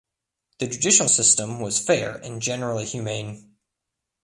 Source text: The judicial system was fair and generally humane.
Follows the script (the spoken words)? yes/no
yes